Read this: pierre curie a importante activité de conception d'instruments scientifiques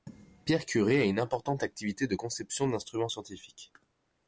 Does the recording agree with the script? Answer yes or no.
no